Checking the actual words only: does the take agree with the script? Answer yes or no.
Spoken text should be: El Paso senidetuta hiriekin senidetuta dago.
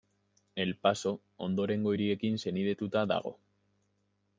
no